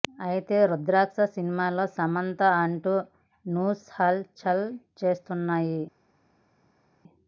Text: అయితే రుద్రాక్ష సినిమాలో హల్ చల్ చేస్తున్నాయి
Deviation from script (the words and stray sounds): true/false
true